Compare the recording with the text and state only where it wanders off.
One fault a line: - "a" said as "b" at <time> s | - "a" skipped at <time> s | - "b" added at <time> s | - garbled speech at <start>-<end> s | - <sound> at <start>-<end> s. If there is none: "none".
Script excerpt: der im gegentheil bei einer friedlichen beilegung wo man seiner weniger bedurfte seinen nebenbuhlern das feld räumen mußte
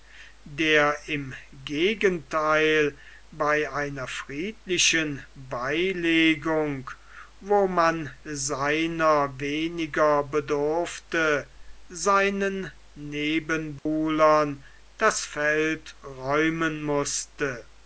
- dropout at 13.8-13.9 s